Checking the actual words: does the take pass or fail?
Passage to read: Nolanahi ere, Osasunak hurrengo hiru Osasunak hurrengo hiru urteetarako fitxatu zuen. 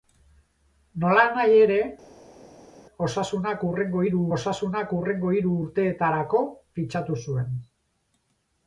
pass